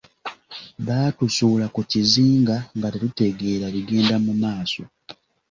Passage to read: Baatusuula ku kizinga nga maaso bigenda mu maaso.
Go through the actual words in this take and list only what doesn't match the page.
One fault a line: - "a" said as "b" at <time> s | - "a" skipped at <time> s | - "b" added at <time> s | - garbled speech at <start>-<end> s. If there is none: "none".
- "maaso" said as "tetutegeera" at 2.9 s